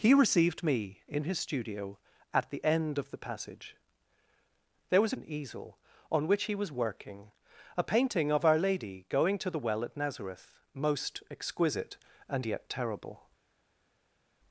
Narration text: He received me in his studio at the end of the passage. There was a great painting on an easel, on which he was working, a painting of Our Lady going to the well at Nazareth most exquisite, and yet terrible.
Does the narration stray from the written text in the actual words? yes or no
yes